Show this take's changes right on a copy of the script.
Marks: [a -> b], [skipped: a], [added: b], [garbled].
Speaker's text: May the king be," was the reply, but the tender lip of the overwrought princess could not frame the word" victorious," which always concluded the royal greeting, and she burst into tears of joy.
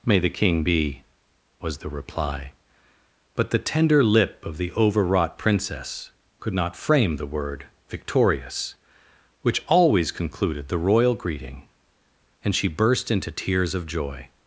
May the king be," was the reply, but the tender lip of the overwrought princess could not frame the word" victorious," which always concluded the royal greeting, and she burst into tears of joy.